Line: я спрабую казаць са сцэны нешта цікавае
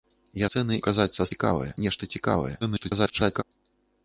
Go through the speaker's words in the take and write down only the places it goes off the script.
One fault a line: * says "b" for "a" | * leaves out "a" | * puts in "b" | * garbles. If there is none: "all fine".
* says "сцэны" for "спрабую"
* says "цікавае" for "сцэны"
* garbles